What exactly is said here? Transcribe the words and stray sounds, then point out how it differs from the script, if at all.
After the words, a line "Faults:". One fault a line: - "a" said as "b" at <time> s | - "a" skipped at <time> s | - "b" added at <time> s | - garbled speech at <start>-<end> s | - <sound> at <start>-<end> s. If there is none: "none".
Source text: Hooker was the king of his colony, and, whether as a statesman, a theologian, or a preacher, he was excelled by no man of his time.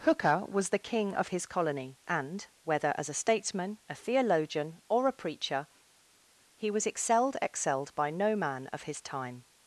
Hooker was the king of his colony, and, whether as a statesman, a theologian, or a preacher, he was excelled excelled by no man of his time.
Faults:
- "excelled" added at 7.4 s